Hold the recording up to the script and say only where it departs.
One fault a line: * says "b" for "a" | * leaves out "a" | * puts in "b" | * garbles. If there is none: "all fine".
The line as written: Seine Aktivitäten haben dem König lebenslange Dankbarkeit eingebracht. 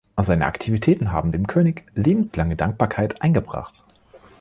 all fine